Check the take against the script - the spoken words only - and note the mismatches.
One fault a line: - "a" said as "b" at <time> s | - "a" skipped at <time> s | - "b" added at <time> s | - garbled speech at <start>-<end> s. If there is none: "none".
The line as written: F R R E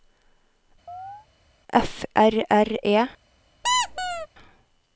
none